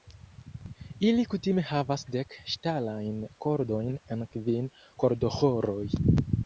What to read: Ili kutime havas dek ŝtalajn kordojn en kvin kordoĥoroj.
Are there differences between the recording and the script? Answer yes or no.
no